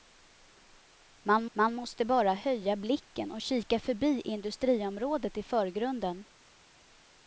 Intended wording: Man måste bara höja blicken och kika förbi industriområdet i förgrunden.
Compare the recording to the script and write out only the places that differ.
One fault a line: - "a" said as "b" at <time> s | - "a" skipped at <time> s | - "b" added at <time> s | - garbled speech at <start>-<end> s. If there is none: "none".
- "man" added at 1.5 s